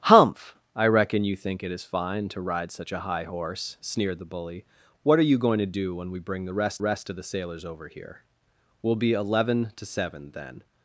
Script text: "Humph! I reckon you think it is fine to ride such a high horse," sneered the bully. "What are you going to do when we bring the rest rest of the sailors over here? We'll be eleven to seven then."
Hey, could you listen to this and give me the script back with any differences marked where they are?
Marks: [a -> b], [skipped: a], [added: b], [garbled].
"Humph! I reckon you think it is fine to ride such a high horse," sneered the bully. "What are you going to do when we bring the rest rest of the sailors over here? We'll be eleven to seven then."